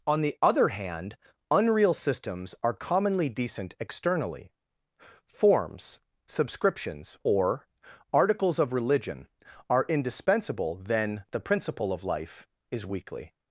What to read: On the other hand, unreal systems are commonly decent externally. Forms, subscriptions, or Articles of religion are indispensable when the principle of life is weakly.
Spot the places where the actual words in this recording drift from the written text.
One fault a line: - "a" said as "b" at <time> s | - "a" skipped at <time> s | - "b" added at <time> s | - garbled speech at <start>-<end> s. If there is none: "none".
- "when" said as "then" at 10.8 s